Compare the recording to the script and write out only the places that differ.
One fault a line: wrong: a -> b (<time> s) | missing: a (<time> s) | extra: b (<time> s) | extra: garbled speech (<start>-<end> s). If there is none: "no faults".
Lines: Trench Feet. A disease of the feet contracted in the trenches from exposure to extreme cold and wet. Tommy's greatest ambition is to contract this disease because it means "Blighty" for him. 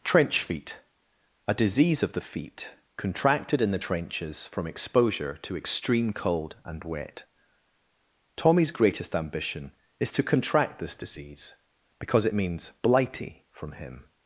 wrong: for -> from (13.5 s)